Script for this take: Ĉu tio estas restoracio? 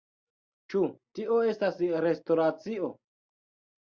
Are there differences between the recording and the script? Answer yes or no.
no